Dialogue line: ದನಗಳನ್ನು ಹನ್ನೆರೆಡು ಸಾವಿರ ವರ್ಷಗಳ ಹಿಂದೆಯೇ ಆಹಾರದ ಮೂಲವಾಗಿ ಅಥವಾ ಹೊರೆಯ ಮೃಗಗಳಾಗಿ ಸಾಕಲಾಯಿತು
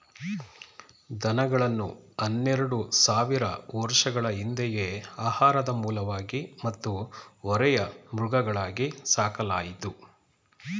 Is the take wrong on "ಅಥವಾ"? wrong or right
wrong